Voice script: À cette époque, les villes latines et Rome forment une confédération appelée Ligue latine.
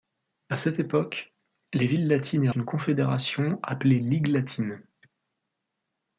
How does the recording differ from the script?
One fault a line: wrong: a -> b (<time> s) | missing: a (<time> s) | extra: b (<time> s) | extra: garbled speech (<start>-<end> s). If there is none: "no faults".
missing: Rome forment (2.5 s)